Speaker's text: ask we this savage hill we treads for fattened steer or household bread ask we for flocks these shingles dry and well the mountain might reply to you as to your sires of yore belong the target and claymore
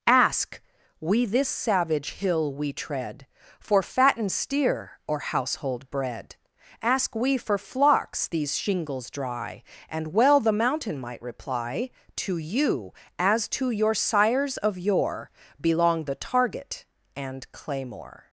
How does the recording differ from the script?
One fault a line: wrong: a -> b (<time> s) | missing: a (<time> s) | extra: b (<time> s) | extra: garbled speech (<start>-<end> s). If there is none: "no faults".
wrong: treads -> tread (2.7 s)